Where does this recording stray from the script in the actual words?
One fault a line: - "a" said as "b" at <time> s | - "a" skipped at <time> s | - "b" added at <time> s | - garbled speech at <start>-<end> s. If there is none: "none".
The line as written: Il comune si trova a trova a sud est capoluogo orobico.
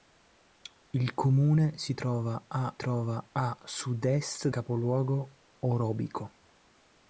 none